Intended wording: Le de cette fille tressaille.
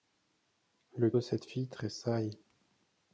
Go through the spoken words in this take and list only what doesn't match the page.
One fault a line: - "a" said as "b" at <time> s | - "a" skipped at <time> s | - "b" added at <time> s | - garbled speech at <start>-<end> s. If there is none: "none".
none